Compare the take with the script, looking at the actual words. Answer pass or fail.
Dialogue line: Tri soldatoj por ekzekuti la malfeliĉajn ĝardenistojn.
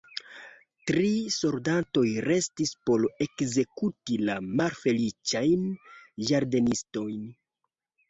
fail